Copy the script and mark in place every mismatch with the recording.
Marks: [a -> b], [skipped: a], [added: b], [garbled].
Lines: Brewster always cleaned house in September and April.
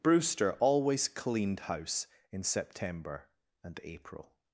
Brewster always cleaned house in September and April.